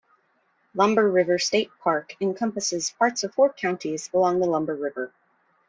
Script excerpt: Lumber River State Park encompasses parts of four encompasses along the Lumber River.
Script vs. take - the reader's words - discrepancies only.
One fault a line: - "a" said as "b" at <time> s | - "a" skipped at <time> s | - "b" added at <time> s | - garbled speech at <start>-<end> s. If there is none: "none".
- "encompasses" said as "counties" at 3.5 s